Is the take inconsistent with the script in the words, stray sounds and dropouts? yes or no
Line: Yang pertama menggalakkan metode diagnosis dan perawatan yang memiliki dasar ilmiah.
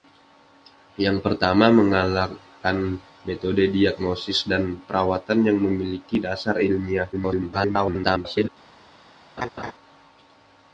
yes